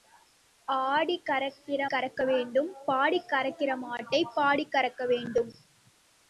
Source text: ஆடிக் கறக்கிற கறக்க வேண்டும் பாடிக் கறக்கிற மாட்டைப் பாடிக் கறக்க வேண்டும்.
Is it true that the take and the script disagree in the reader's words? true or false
false